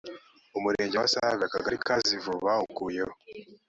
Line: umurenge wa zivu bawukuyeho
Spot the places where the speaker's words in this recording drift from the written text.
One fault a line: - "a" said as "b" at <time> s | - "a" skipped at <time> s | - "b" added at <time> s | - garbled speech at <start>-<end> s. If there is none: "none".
- "save akagari ka" added at 1.1 s